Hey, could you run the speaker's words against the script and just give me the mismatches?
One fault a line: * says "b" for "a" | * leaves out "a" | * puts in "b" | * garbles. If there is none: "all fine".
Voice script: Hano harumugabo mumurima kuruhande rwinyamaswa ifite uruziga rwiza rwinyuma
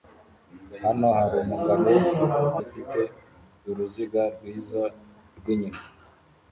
* leaves out "mumurima kuruhande rwinyamaswa"